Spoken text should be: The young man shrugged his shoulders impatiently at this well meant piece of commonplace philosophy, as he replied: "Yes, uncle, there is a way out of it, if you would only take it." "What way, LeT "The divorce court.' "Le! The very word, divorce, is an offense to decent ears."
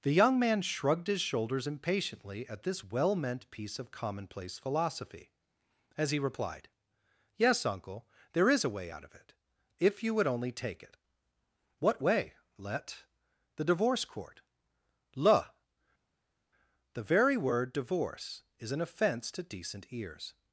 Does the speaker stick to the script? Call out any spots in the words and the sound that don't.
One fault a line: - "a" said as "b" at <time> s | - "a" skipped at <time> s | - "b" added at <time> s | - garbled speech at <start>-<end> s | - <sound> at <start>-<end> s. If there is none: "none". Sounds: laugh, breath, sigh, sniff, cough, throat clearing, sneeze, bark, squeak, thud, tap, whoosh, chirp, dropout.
none